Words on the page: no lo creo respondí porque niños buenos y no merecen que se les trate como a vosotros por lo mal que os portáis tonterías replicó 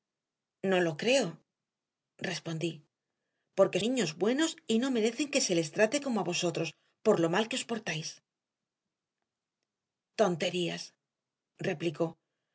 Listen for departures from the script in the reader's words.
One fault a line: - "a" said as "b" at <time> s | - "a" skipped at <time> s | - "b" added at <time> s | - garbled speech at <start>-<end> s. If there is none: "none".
none